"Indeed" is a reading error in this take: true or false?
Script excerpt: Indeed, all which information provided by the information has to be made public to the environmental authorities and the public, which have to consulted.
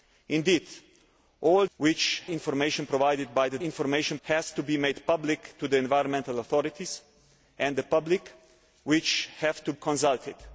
false